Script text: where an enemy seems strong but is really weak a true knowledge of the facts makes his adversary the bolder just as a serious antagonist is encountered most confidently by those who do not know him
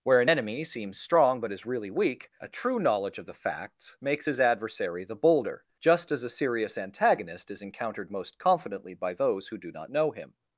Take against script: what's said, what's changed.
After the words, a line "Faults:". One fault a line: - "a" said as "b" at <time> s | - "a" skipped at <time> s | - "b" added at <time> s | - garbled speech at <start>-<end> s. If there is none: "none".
where an enemy seems strong but is really weak a true knowledge of the facts makes his adversary the bolder just as a serious antagonist is encountered most confidently by those who do not know him
Faults:
none